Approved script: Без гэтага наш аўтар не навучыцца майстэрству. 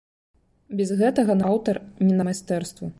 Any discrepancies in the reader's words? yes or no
yes